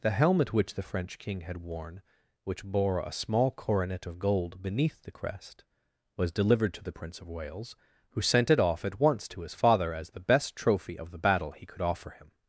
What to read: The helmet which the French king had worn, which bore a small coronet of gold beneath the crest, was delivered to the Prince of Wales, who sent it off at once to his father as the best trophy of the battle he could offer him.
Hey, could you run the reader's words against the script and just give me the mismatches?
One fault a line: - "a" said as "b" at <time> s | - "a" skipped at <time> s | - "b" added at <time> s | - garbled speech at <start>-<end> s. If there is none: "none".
none